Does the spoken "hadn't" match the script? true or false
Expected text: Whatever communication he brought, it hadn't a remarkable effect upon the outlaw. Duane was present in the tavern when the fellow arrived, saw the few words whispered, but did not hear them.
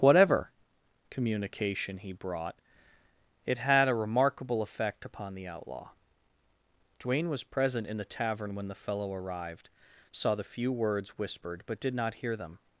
false